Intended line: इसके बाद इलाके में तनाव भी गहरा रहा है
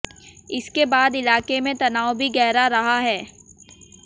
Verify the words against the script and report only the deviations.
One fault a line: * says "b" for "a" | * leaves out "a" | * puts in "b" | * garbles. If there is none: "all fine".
all fine